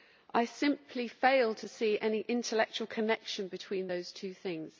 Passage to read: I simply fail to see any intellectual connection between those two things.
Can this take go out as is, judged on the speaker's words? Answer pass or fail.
pass